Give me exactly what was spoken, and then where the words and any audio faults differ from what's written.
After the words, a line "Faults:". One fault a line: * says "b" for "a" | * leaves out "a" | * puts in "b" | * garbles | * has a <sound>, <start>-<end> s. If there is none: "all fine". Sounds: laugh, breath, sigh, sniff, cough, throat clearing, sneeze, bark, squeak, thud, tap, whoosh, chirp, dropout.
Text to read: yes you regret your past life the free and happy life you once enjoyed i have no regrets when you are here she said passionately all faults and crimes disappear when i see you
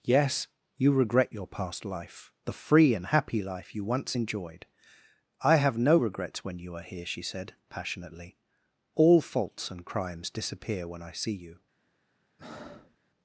yes you regret your past life the free and happy life you once enjoyed i have no regrets when you are here she said passionately all faults and crimes disappear when i see you
Faults:
* has a breath, 12.4-13.0 s